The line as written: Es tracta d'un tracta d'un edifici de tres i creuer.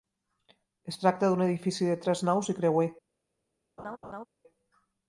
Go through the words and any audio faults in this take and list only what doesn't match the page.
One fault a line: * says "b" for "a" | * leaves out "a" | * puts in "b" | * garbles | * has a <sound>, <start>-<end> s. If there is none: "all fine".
* leaves out "tracta d'un"
* puts in "naus"
* has a laugh, 3.8-4.3 s